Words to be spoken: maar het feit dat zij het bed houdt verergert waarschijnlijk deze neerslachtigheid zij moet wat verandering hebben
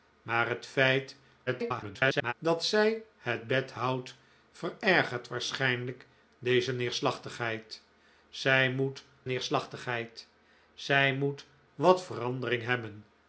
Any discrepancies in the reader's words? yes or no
yes